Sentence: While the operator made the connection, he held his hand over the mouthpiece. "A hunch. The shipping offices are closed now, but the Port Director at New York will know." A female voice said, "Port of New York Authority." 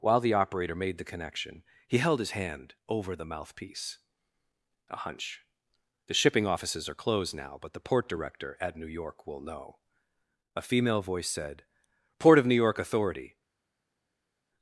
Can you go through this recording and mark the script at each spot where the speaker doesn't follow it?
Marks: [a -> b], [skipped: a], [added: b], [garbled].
While the operator made the connection, he held his hand over the mouthpiece. "A hunch. The shipping offices are closed now, but the Port Director at New York will know." A female voice said, "Port of New York Authority."